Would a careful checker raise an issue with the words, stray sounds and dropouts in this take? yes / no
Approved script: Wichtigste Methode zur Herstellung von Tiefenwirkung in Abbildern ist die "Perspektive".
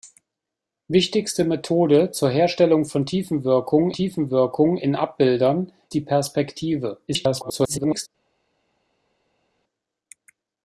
yes